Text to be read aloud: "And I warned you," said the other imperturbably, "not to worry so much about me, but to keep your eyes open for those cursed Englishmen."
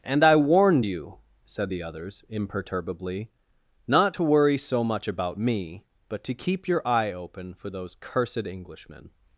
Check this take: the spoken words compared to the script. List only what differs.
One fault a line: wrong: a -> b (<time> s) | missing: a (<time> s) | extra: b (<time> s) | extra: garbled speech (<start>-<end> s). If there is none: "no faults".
wrong: other -> others (1.8 s)
wrong: eyes -> eye (6.9 s)